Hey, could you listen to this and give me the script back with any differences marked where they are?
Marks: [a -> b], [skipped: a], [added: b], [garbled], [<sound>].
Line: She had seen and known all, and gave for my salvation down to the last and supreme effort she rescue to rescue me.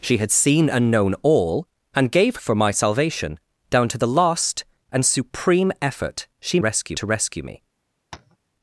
She had seen and known all, and gave for my salvation down to the last and supreme effort she rescue to rescue me. [tap]